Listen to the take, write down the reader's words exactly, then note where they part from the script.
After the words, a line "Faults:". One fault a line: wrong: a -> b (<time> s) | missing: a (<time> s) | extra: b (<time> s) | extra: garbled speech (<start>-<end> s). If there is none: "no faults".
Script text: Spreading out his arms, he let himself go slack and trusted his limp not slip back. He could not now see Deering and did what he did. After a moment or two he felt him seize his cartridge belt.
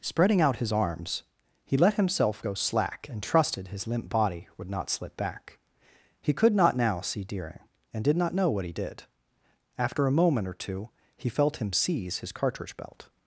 Spreading out his arms, he let himself go slack and trusted his limp body would not slip back. He could not now see Deering and did not know what he did. After a moment or two he felt him seize his cartridge belt.
Faults:
extra: body would (4.1 s)
extra: not know (8.2 s)